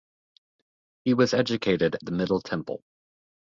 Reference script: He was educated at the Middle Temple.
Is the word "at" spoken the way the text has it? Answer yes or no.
no